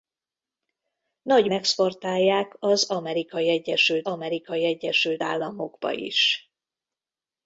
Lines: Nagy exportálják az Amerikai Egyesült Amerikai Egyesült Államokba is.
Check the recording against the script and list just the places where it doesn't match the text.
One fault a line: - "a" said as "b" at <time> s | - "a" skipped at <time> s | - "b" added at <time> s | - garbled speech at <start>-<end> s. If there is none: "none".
none